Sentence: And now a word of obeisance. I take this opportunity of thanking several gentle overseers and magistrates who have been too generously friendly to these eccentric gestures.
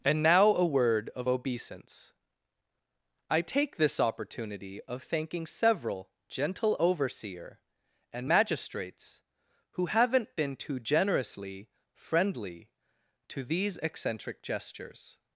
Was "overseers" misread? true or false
true